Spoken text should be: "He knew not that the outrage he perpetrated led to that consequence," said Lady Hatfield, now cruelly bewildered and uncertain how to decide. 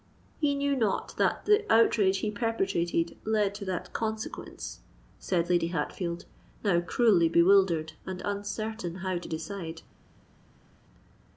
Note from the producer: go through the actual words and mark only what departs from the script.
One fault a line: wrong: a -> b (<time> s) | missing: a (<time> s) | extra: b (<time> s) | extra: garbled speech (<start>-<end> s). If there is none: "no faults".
no faults